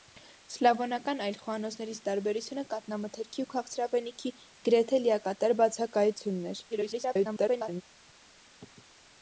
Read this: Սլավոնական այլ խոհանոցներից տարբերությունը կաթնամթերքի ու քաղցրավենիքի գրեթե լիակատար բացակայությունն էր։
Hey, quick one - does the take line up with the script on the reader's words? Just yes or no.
no